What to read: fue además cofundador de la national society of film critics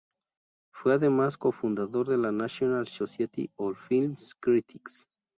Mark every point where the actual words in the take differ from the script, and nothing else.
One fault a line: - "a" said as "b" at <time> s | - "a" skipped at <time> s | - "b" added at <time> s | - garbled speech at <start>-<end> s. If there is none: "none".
none